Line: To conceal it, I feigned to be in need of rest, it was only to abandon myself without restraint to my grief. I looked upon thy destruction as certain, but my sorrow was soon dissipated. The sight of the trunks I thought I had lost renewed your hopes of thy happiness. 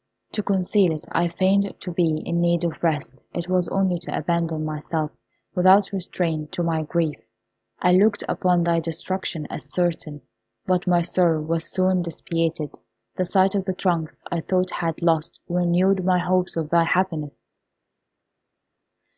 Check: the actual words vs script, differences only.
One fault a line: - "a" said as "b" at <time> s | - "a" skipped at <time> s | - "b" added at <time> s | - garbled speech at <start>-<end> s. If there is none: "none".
- "your" said as "my" at 16.0 s